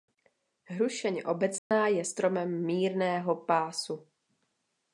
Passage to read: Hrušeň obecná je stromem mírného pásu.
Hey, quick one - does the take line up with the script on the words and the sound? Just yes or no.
no